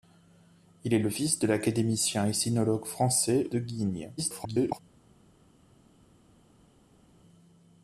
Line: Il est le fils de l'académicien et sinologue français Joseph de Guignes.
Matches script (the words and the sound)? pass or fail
fail